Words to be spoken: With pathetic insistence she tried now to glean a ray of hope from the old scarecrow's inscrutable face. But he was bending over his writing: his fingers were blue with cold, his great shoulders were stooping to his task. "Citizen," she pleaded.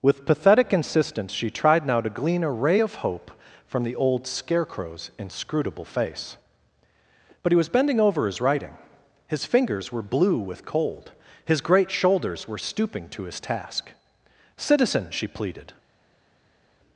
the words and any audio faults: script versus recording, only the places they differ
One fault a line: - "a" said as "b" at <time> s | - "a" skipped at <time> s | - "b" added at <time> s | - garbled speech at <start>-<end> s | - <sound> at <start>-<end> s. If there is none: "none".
none